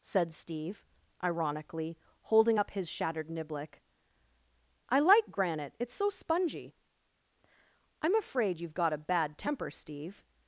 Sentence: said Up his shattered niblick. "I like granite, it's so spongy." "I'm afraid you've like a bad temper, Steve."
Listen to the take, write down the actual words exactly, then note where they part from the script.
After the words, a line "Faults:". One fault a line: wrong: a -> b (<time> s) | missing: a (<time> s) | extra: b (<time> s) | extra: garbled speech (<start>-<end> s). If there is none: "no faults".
said Steve, ironically, holding up his shattered niblick. "I like granite, it's so spongy." "I'm afraid you've got a bad temper, Steve."
Faults:
extra: Steve ironically holding (0.3 s)
wrong: like -> got (8.7 s)